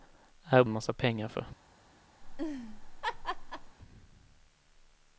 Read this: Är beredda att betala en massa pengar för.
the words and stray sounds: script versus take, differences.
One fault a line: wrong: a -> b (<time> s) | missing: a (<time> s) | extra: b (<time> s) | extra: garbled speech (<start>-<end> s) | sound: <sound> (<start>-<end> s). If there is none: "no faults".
missing: beredda att betala (0.6 s)
sound: laugh (2.2-3.8 s)